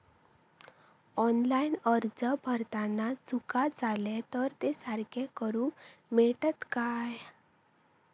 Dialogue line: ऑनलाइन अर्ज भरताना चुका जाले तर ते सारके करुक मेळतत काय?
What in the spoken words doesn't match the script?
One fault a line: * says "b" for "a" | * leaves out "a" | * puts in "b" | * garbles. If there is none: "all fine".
all fine